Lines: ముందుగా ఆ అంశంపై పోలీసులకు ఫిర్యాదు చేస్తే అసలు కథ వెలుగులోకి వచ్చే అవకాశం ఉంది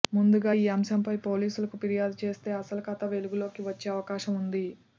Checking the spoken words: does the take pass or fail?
fail